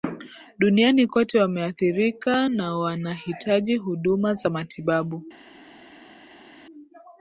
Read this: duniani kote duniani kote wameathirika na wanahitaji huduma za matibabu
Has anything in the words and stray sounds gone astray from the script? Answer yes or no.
yes